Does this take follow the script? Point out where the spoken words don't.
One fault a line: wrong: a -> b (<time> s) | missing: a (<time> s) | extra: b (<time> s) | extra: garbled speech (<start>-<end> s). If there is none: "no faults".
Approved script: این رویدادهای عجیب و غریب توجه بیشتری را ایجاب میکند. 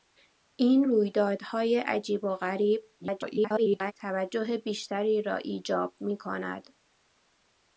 extra: garbled speech (3.0-3.9 s)